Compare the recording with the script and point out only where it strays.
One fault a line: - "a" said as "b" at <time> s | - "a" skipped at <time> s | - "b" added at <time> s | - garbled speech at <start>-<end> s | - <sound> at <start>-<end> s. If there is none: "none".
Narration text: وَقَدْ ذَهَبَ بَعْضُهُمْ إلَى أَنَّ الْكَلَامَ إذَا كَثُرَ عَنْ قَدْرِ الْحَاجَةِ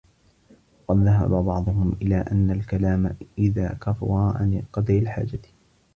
none